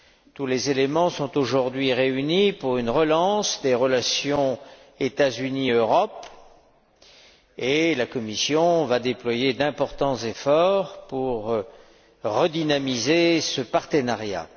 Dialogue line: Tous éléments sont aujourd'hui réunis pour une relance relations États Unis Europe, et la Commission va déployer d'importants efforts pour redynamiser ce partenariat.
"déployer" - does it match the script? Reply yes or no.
yes